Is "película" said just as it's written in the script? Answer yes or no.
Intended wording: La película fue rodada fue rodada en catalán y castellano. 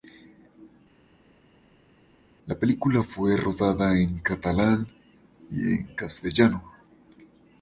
yes